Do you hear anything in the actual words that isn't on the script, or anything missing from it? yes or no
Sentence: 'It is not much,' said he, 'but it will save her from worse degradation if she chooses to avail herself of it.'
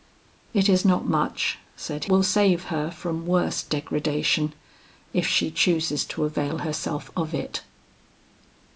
yes